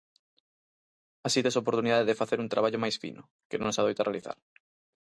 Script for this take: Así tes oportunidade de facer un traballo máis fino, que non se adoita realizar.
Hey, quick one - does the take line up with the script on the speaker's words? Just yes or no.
yes